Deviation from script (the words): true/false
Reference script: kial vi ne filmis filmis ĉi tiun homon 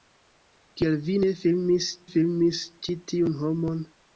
false